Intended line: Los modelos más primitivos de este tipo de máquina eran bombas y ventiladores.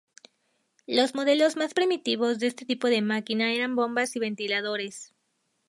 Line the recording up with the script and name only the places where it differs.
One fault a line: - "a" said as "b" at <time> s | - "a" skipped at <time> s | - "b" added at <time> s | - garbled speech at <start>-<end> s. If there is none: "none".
none